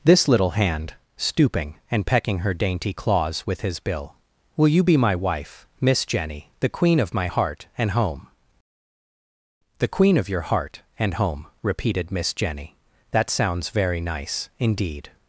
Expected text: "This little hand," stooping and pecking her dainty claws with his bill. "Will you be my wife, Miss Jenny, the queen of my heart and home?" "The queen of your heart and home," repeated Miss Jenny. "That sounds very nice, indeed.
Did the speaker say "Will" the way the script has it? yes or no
yes